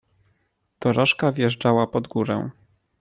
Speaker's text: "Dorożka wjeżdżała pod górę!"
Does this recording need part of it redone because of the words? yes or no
no